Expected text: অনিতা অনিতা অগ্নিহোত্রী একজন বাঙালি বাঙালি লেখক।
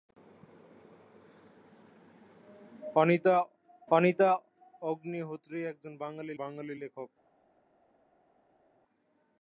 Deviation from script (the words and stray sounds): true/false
false